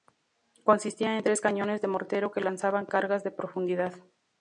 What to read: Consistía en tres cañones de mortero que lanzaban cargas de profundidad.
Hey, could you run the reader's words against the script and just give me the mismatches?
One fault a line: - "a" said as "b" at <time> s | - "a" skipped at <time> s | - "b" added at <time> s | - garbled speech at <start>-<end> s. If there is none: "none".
none